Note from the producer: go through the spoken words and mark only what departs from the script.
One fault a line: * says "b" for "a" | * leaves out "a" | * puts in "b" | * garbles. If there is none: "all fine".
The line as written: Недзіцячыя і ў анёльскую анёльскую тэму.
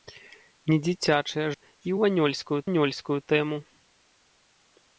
all fine